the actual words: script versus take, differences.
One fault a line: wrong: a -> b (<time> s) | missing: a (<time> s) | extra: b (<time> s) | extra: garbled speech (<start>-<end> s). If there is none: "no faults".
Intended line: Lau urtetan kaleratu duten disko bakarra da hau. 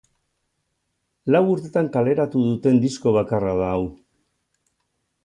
no faults